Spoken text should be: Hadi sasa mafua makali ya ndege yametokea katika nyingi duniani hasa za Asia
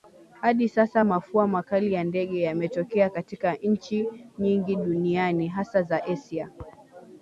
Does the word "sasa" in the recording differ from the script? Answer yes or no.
no